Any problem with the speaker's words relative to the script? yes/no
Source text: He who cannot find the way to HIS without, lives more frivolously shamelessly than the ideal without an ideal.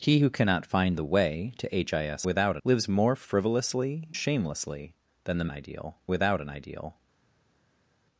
no